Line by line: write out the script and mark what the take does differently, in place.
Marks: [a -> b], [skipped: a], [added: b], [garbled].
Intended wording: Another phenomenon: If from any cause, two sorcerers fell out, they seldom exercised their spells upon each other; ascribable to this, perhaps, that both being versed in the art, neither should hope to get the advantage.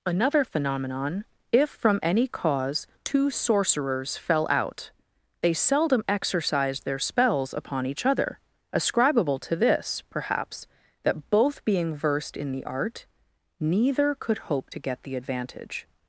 Another phenomenon: If from any cause, two sorcerers fell out, they seldom exercised their spells upon each other; ascribable to this, perhaps, that both being versed in the art, neither [should -> could] hope to get the advantage.